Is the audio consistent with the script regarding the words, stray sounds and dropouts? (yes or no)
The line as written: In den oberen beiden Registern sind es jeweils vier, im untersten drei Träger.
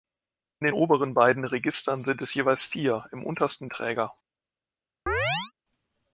no